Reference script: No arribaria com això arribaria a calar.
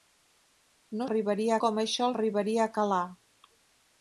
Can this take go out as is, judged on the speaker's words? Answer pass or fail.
pass